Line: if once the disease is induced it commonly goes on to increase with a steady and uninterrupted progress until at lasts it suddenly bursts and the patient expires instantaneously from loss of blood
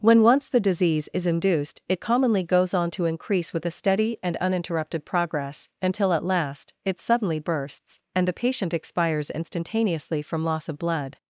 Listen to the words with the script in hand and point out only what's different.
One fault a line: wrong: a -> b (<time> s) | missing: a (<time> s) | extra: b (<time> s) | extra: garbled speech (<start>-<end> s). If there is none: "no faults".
wrong: if -> when (0.0 s)
wrong: lasts -> last (6.2 s)